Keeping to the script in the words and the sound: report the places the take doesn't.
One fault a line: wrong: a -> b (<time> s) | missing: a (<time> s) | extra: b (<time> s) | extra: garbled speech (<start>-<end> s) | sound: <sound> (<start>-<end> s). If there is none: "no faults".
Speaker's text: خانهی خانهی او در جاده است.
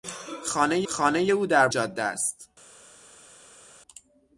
no faults